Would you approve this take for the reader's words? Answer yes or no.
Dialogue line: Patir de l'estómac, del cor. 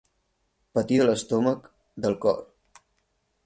yes